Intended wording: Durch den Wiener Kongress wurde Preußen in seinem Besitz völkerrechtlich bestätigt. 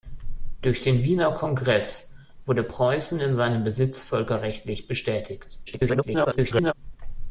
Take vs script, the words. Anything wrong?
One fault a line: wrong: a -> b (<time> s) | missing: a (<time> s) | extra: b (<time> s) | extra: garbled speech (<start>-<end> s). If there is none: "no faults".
extra: garbled speech (5.7-6.7 s)